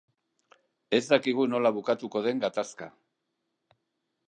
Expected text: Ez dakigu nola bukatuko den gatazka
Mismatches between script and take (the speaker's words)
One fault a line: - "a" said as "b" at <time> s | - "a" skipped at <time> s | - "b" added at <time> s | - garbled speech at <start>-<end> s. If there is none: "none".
none